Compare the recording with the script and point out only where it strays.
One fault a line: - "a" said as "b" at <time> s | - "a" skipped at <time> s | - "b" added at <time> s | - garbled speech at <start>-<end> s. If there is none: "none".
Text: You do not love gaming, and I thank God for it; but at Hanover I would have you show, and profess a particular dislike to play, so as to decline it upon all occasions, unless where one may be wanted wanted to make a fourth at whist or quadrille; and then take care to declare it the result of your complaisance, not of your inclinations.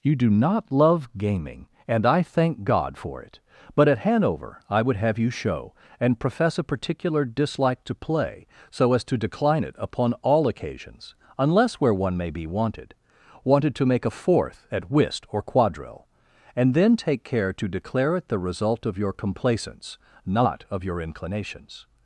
none